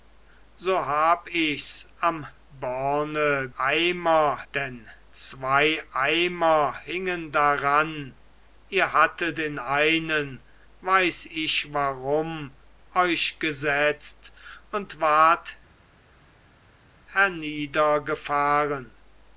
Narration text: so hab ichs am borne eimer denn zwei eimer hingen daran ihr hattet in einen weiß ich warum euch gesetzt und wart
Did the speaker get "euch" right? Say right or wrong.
right